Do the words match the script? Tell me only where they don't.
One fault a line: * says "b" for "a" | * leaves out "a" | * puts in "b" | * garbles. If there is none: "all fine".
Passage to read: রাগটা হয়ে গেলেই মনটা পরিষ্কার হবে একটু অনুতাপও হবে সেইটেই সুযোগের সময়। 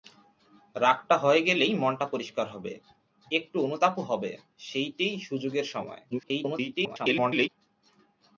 * garbles